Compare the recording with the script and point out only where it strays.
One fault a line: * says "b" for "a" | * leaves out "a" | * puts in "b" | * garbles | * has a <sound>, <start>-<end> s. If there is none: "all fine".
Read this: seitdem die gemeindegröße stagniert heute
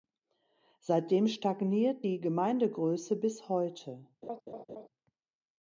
* puts in "stagniert"
* says "bis" for "stagniert"
* has a laugh, 4.2-4.9 s